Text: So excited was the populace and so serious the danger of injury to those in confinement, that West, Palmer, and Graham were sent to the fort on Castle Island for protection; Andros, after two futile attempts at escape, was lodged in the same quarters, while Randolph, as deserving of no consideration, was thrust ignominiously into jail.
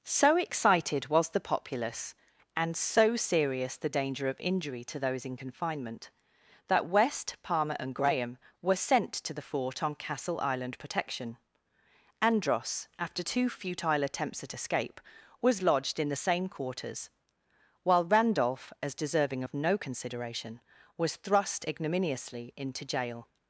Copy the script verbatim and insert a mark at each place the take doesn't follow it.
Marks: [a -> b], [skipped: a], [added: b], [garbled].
So excited was the populace and so serious the danger of injury to those in confinement, that West, Palmer, and Graham were sent to the fort on Castle Island [skipped: for] protection; Andros, after two futile attempts at escape, was lodged in the same quarters, while Randolph, as deserving of no consideration, was thrust ignominiously into jail.